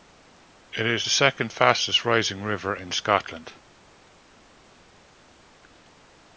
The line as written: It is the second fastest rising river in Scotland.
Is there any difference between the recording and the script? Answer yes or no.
no